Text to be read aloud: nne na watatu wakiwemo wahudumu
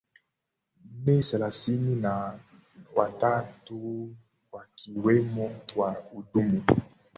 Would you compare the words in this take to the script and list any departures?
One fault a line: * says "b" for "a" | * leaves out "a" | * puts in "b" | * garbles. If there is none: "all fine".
* puts in "thelathini"